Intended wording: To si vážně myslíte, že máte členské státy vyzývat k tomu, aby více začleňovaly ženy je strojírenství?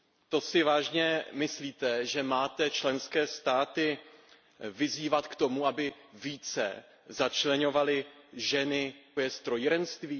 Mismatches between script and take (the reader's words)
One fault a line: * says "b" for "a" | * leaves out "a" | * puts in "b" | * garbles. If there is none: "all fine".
all fine